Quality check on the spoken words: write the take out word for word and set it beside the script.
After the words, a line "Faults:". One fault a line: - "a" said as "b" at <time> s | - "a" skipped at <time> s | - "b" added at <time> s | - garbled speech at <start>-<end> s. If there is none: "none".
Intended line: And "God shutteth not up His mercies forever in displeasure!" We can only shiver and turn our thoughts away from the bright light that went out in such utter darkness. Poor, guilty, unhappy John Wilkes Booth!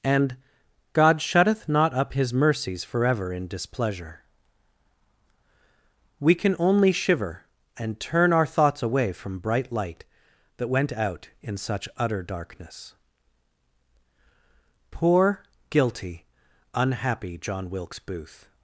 And "God shutteth not up His mercies forever in displeasure!" We can only shiver and turn our thoughts away from bright light that went out in such utter darkness. Poor, guilty, unhappy John Wilkes Booth!
Faults:
- "the" skipped at 9.4 s